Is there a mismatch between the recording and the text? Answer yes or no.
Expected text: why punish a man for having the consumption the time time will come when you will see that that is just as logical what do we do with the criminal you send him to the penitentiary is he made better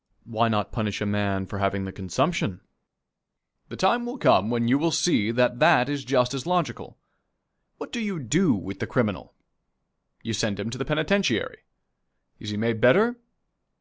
yes